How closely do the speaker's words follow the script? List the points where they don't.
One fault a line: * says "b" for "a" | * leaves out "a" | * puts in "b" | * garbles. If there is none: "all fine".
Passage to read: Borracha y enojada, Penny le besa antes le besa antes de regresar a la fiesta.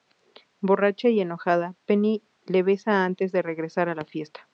* leaves out "le besa antes"